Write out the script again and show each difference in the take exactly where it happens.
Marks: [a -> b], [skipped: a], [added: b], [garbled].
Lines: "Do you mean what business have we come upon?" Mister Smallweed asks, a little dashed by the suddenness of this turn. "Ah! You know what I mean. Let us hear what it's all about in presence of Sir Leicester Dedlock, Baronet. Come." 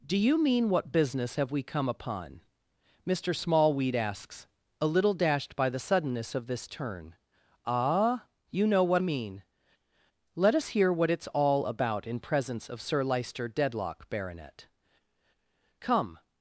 "Do you mean what business have we come upon?" Mister Smallweed asks, a little dashed by the suddenness of this turn. "Ah! You know what [skipped: I] mean. Let us hear what it's all about in presence of Sir Leicester Dedlock, Baronet. Come."